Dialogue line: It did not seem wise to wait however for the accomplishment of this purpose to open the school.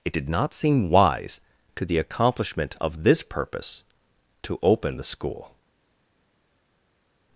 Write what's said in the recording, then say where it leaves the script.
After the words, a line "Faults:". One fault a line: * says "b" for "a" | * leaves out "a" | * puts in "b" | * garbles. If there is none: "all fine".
It did not seem wise to the accomplishment of this purpose to open the school.
Faults:
* leaves out "wait however for"